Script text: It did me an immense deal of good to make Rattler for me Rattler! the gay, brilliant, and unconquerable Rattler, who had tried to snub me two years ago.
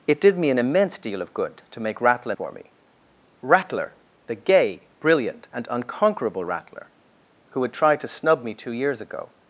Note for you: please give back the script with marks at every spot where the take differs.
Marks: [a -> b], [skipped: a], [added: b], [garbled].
It did me an immense deal of good to make Rattler for me Rattler! the gay, brilliant, and unconquerable Rattler, who had tried to snub me two years ago.